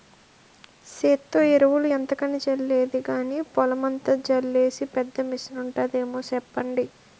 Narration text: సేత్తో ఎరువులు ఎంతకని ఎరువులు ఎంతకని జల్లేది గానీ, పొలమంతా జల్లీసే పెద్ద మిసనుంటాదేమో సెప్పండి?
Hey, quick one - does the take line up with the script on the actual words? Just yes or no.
no